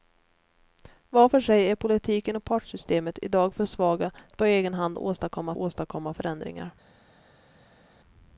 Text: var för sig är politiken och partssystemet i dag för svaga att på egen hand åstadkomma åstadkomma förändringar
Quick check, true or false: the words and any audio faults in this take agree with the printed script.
true